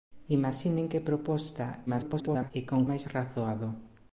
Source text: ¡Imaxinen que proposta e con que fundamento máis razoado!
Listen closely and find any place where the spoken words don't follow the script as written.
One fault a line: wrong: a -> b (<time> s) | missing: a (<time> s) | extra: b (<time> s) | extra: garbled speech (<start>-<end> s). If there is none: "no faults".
extra: garbled speech (1.9-2.5 s)
missing: que fundamento (2.8 s)